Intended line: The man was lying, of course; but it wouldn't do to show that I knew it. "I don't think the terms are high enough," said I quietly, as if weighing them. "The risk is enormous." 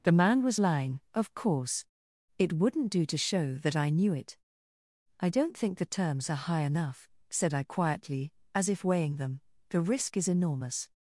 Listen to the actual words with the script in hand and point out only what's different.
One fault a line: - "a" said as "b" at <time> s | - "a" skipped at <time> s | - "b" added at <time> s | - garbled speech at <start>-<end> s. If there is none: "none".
- "but" skipped at 1.8 s